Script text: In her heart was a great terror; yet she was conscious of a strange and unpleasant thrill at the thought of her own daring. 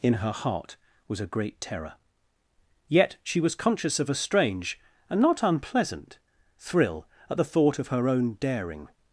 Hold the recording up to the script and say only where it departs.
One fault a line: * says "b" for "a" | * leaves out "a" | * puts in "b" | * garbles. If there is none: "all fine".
* puts in "not"